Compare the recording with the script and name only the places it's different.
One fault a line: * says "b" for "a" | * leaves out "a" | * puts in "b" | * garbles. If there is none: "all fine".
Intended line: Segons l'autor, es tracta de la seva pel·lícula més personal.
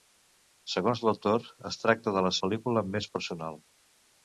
* leaves out "seva"